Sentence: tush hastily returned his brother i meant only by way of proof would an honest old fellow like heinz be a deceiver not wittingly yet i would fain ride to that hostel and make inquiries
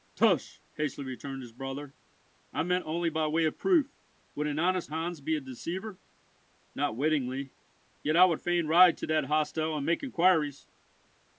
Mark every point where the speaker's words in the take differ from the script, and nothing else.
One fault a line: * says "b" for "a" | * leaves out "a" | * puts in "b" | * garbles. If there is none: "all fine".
* leaves out "old fellow like"